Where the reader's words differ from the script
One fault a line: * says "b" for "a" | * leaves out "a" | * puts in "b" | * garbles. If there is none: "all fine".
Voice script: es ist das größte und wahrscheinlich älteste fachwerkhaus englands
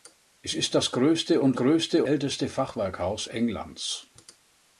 * says "größte" for "wahrscheinlich"